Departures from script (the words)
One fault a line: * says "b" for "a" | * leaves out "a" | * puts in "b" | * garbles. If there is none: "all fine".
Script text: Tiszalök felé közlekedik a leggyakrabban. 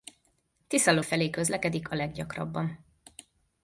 all fine